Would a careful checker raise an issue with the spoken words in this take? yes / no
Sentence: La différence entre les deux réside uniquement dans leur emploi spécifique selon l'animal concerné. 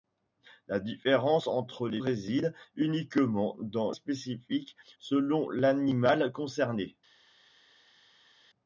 yes